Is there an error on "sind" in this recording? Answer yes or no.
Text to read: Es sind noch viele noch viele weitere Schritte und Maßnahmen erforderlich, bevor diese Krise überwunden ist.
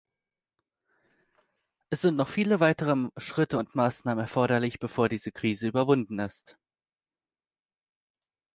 no